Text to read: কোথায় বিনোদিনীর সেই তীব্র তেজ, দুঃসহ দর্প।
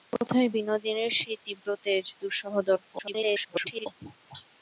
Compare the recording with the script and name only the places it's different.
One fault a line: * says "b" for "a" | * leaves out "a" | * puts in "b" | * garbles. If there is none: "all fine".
* garbles